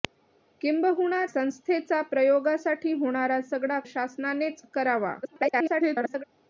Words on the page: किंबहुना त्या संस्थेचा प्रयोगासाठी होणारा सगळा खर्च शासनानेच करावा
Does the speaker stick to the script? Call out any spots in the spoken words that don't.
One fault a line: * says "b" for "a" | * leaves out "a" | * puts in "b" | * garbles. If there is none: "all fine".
* leaves out "त्या"
* leaves out "खर्च"
* garbles